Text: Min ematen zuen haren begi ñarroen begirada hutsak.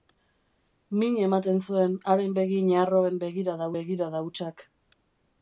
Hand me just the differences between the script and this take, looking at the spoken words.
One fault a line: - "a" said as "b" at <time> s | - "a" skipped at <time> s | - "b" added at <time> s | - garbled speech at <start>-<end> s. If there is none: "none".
- "begirada" added at 3.8 s